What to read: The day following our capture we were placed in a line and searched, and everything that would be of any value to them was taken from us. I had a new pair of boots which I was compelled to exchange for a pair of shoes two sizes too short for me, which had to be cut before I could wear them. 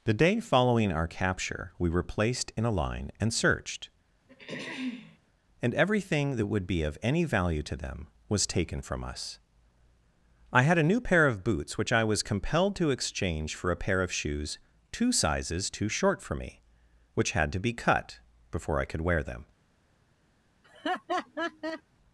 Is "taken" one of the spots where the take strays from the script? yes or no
no